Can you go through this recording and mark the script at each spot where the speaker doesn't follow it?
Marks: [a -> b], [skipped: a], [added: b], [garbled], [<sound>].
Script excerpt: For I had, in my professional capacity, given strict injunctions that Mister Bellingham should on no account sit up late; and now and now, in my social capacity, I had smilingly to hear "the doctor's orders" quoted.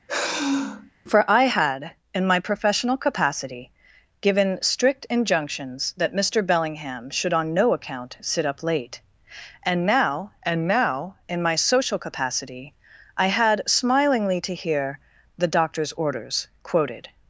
[sigh] For I had, in my professional capacity, given strict injunctions that Mister Bellingham should on no account sit up late; and now and now, in my social capacity, I had smilingly to hear "the doctor's orders" quoted.